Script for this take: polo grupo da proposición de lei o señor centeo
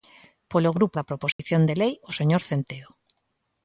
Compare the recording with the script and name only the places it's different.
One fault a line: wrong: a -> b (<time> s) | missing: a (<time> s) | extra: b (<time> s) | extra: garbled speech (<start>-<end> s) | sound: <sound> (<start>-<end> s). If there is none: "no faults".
sound: dropout (1.3-1.4 s)